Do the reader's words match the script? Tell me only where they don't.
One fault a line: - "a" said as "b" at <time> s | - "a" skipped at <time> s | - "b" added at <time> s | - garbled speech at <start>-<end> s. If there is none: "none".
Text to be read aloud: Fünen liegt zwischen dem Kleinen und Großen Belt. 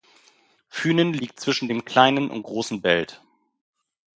none